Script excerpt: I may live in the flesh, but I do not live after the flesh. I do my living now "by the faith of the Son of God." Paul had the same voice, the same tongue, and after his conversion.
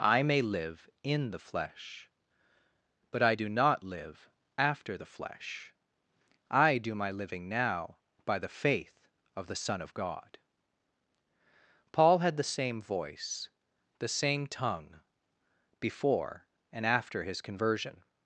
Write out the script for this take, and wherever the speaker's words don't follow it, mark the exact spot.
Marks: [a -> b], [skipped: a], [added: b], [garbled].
I may live in the flesh, but I do not live after the flesh. I do my living now "by the faith of the Son of God." Paul had the same voice, the same tongue, [added: before] and after his conversion.